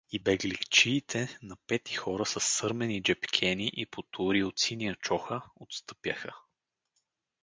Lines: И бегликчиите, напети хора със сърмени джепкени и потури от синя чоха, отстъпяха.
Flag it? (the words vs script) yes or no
no